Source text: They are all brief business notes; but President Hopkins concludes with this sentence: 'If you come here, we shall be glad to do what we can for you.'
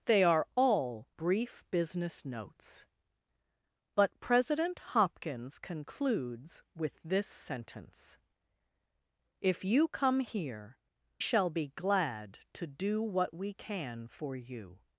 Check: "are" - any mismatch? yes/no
no